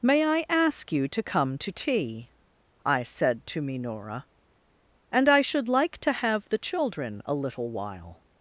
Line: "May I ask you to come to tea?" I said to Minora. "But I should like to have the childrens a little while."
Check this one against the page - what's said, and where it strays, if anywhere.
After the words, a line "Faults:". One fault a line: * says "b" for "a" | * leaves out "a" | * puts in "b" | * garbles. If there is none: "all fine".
"May I ask you to come to tea?" I said to Minora. "And I should like to have the children a little while."
Faults:
* says "And" for "But"
* says "children" for "childrens"